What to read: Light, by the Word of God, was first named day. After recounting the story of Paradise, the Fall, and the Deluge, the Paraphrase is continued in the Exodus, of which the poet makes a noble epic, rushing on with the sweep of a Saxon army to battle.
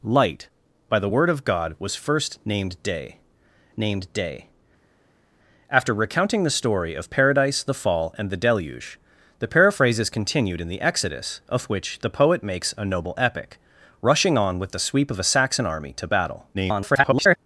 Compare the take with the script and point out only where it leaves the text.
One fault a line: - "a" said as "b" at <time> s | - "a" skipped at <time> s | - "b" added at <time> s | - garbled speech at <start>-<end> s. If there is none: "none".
- "named day" added at 3.8 s
- garbled speech at 16.5-17.4 s